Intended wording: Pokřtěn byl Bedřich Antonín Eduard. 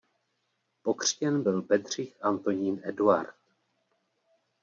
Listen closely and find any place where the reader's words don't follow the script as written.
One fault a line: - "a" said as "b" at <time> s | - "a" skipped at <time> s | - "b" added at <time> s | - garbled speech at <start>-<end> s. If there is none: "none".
none